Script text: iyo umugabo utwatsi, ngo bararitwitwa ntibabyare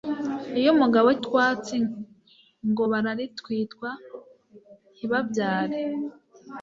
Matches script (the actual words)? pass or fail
pass